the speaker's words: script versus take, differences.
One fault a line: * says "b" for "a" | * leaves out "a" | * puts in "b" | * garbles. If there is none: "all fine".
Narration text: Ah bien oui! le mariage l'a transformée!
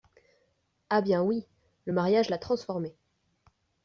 all fine